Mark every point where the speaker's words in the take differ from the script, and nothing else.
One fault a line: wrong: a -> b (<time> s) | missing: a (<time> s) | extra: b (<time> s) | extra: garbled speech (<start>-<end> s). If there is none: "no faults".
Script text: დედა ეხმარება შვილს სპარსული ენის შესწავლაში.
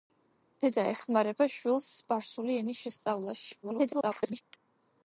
extra: garbled speech (3.6-4.4 s)